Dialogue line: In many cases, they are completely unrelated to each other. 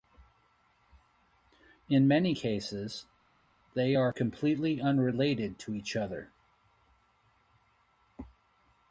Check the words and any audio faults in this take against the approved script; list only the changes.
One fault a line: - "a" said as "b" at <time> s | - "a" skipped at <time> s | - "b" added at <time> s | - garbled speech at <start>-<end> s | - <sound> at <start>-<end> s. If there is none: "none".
none